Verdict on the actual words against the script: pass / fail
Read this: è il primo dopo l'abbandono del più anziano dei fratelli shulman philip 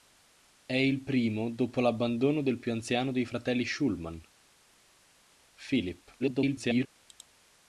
fail